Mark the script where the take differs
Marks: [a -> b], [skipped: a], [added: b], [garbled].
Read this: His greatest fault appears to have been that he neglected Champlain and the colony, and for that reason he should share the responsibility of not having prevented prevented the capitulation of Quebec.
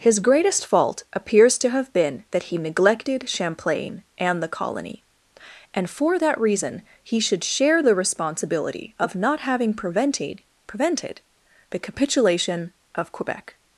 His greatest fault appears to have been that he neglected Champlain and the colony, and for that reason he should share the responsibility of not having prevented prevented the capitulation of Quebec.